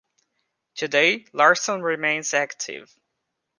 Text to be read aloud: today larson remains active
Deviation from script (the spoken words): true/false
false